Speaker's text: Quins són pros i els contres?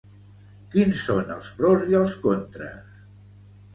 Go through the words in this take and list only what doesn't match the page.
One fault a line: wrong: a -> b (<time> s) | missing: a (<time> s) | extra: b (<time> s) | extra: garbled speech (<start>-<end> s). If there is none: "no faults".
extra: els (1.4 s)